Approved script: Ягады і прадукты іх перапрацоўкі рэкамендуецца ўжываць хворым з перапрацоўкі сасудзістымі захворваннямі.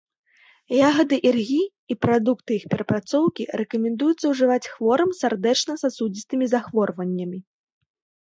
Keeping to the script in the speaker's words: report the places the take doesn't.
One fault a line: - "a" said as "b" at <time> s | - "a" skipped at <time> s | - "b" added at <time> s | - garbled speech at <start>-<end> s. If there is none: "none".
- "іргі" added at 1.3 s
- "перапрацоўкі" said as "сардэчна" at 5.2 s